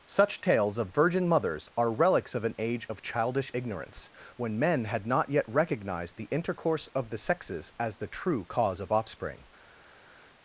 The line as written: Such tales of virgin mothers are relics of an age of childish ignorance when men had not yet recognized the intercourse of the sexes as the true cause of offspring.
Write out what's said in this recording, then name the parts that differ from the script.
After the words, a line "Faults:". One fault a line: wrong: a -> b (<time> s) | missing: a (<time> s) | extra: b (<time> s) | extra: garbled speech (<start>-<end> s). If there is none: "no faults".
Such tales of virgin mothers are relics of an age of childish ignorance when men had not yet recognized the intercourse of the sexes as the true cause of offspring.
Faults:
no faults